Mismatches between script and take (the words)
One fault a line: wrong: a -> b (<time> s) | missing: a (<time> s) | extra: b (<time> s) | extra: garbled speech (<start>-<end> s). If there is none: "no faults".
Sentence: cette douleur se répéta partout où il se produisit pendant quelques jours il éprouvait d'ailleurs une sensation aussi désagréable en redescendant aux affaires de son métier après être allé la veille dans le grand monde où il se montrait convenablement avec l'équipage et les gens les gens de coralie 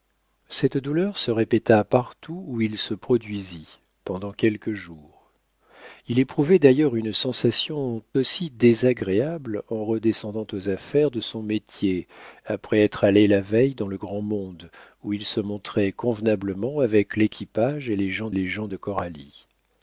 no faults